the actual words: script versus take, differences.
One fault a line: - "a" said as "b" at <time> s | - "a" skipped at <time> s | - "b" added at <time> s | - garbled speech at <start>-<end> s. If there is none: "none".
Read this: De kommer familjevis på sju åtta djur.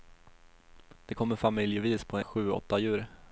none